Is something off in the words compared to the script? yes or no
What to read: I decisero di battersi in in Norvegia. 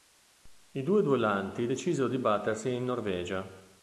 yes